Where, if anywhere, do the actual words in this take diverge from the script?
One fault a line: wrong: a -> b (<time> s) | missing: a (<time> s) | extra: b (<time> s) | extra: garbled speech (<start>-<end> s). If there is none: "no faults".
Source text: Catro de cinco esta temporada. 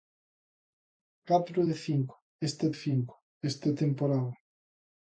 extra: cinco esta (2.7 s)